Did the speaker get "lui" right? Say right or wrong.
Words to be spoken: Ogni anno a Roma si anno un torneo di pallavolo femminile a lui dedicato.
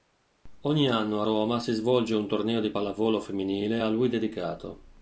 right